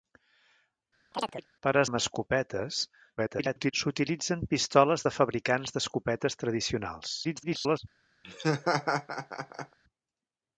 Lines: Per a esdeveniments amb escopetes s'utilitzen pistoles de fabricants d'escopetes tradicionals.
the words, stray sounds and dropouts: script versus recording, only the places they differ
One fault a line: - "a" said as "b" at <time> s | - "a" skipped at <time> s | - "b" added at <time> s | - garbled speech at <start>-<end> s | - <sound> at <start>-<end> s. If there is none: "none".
- chirp at 1.1-1.5 s
- "esdeveniments" skipped at 1.8 s
- garbled speech at 3.2-3.7 s
- garbled speech at 7.2-7.8 s
- laugh at 8.2-9.8 s